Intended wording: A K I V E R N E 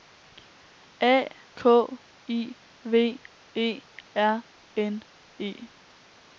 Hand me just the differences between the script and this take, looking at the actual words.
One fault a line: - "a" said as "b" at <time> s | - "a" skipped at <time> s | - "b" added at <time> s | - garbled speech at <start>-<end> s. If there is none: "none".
none